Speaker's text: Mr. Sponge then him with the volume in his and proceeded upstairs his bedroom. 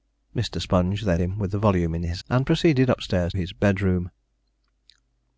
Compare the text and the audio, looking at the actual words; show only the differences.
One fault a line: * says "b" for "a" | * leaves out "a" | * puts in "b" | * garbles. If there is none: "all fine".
all fine